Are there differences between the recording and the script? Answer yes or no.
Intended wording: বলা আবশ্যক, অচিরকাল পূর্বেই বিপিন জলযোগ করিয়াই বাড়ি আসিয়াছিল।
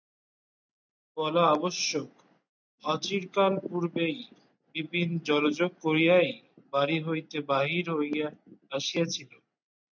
yes